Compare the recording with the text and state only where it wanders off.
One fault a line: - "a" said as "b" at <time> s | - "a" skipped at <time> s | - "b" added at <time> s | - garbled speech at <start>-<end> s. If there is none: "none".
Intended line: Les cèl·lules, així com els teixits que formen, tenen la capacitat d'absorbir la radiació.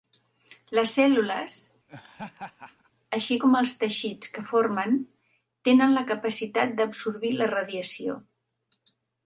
none